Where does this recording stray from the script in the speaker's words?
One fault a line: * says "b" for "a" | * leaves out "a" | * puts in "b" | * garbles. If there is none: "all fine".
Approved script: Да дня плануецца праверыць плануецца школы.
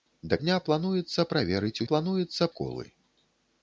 all fine